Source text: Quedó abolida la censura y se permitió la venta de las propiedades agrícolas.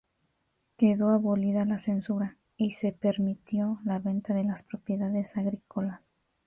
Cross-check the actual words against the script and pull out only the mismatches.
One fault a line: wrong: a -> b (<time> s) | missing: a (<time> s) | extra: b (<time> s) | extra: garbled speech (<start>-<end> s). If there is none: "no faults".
no faults